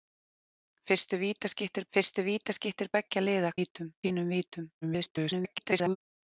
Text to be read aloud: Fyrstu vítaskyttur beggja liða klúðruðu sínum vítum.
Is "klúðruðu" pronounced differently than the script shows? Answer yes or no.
yes